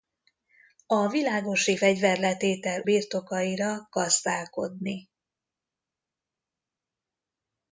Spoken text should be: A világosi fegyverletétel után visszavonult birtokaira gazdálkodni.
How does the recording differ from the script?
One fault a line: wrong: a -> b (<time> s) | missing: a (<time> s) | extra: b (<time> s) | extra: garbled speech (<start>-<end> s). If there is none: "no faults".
missing: után visszavonult (2.8 s)